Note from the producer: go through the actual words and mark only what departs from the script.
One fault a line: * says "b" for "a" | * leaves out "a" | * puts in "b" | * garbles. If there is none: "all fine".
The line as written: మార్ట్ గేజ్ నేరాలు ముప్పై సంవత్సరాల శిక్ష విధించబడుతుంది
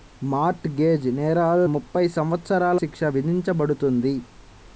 all fine